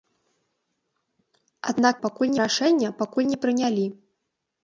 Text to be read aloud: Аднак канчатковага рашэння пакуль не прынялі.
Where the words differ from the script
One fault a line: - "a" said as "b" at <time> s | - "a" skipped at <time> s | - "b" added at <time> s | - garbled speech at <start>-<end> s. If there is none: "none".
- "канчатковага" said as "пакуль" at 2.1 s